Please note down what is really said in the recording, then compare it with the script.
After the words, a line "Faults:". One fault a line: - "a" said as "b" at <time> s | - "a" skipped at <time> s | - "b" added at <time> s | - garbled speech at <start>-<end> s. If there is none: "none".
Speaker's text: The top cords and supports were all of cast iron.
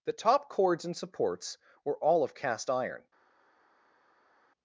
The top cords and supports were all of cast iron.
Faults:
none